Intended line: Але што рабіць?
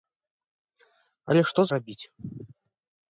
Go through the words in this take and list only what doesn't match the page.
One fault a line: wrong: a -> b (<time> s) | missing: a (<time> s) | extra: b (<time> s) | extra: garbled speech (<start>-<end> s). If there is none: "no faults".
no faults